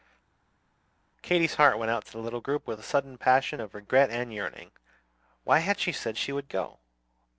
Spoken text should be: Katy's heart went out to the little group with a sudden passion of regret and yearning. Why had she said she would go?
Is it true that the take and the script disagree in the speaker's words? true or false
false